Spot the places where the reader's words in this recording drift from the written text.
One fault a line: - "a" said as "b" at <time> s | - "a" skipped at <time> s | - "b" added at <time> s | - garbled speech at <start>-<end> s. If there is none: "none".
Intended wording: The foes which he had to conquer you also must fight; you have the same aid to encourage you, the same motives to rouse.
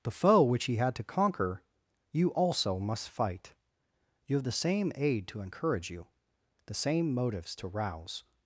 - "foes" said as "foe" at 0.1 s